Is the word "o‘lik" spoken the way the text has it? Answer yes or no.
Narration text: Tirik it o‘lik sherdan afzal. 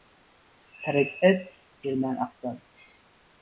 no